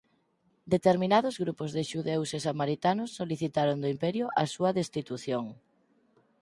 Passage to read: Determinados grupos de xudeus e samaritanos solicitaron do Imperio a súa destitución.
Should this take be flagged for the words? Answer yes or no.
no